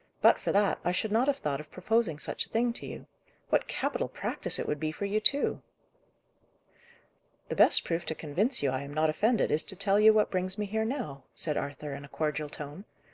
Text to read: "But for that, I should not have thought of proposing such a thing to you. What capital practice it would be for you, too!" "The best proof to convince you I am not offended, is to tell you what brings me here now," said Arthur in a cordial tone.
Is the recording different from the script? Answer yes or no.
no